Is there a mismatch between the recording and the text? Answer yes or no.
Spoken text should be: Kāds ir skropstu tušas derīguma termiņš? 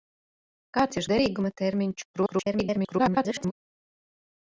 yes